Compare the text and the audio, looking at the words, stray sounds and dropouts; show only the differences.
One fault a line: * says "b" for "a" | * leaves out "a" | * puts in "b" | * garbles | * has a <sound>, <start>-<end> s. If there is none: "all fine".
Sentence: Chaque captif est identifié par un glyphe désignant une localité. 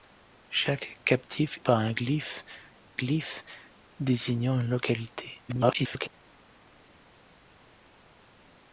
* leaves out "est identifié"
* puts in "glyphe"
* garbles